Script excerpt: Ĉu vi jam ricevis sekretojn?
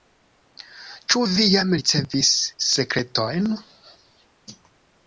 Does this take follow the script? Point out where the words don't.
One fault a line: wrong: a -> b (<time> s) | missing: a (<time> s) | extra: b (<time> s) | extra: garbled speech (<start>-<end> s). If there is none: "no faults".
no faults